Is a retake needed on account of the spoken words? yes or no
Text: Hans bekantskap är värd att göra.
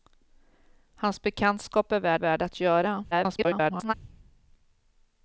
yes